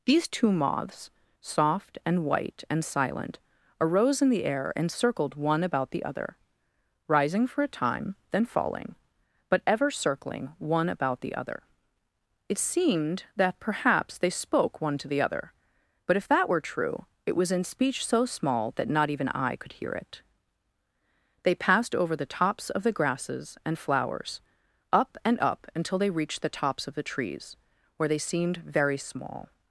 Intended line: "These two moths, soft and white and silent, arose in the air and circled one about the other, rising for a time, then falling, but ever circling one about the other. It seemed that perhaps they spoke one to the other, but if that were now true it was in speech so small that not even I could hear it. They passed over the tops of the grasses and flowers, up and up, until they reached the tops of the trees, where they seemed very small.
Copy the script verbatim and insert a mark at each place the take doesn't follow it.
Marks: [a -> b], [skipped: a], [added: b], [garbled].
"These two moths, soft and white and silent, arose in the air and circled one about the other, rising for a time, then falling, but ever circling one about the other. It seemed that perhaps they spoke one to the other, but if that were [skipped: now] true it was in speech so small that not even I could hear it. They passed over the tops of the grasses and flowers, up and up, until they reached the tops of the trees, where they seemed very small.